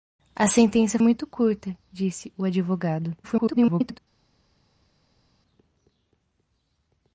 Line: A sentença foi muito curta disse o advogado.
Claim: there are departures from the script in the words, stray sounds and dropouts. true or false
true